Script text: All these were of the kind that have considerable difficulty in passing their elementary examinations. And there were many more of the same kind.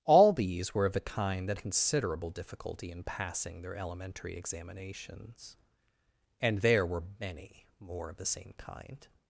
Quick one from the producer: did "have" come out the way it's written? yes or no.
no